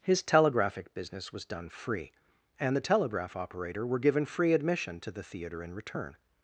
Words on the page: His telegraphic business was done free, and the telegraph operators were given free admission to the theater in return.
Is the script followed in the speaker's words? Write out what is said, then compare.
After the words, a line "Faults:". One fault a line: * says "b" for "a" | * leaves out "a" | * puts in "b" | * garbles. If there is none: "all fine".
His telegraphic business was done free, and the telegraph operator were given free admission to the theater in return.
Faults:
* says "operator" for "operators"